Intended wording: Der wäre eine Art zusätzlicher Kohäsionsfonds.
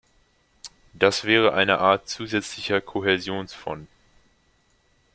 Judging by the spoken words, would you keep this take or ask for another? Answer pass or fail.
fail